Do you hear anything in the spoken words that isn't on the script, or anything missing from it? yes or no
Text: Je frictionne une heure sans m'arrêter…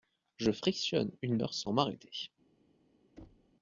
no